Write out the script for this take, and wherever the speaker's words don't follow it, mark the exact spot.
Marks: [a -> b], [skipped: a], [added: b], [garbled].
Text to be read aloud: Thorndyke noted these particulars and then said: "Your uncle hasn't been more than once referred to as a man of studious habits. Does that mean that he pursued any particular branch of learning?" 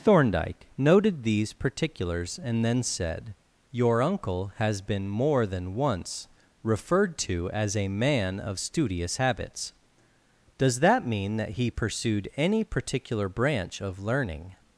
Thorndyke noted these particulars and then said: "Your uncle [hasn't -> has] been more than once referred to as a man of studious habits. Does that mean that he pursued any particular branch of learning?"